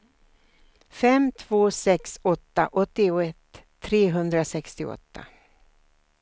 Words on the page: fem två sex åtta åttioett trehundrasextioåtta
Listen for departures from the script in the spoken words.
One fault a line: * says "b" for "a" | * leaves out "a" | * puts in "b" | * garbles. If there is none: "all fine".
all fine